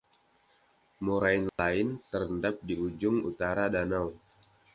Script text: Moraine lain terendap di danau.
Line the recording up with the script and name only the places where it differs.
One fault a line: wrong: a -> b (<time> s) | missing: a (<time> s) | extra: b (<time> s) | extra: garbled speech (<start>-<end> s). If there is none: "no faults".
extra: ujung utara (2.8 s)